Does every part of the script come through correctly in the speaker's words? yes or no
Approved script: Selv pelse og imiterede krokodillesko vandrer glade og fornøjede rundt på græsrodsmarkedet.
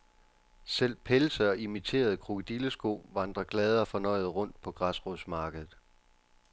yes